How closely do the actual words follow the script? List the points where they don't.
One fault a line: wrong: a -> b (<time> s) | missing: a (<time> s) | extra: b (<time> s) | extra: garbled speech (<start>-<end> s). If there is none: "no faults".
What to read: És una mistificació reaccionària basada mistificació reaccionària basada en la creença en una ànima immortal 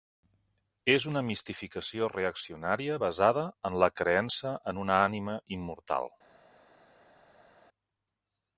missing: mistificació reaccionària basada (3.4 s)